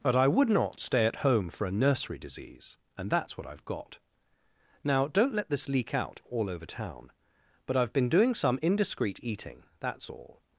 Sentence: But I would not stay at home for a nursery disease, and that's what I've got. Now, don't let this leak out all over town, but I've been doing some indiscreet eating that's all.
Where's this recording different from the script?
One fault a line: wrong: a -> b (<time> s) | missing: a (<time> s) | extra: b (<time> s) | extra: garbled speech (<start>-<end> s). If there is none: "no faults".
no faults